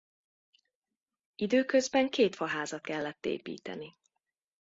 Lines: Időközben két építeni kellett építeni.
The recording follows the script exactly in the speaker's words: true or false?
false